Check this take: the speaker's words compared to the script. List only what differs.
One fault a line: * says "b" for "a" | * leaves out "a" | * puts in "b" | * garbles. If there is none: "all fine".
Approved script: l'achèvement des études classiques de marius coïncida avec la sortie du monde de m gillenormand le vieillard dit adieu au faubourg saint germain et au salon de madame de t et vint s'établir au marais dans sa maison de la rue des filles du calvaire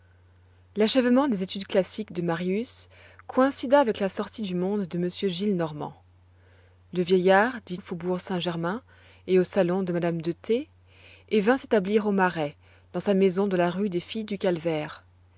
* leaves out "adieu"